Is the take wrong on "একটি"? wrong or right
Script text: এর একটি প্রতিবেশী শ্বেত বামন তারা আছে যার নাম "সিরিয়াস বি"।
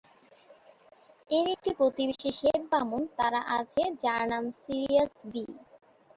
right